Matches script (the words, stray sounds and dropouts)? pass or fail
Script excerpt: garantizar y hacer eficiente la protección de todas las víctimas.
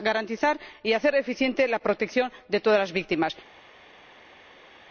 pass